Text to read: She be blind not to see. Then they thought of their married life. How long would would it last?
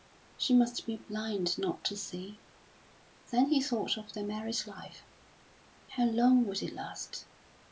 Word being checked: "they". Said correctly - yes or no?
no